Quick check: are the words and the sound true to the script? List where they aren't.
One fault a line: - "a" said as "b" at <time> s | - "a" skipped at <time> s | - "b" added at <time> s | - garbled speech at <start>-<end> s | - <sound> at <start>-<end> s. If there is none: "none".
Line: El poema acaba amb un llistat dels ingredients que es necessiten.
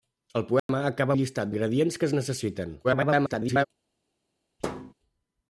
- dropout at 0.6-0.7 s
- "amb" skipped at 1.2 s
- "dels" skipped at 1.5 s
- garbled speech at 2.8-3.7 s
- thud at 4.6-4.9 s